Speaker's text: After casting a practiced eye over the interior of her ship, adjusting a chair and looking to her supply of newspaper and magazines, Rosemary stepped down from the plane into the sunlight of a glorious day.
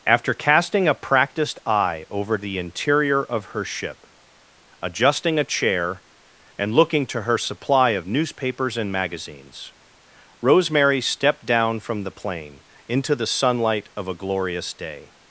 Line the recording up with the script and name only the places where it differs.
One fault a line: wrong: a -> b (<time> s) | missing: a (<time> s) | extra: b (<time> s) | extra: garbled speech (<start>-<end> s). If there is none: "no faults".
wrong: newspaper -> newspapers (8.1 s)